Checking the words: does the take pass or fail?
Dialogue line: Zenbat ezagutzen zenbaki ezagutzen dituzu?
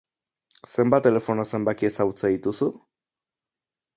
fail